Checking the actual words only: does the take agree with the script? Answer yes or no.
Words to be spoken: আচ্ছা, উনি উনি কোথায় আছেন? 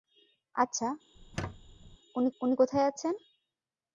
yes